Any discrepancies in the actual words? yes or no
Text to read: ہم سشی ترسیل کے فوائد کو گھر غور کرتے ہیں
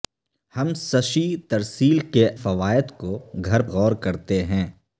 no